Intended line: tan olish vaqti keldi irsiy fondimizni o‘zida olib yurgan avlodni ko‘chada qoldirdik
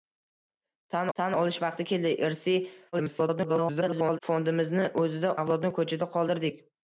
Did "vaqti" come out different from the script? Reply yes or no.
no